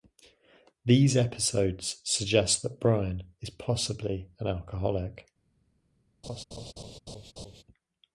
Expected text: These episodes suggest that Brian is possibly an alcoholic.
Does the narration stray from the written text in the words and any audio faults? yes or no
yes